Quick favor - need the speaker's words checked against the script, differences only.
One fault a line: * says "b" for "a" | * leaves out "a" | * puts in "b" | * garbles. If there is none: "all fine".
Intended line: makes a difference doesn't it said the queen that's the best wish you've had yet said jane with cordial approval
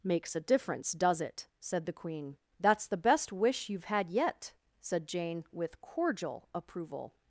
* says "does" for "doesn't"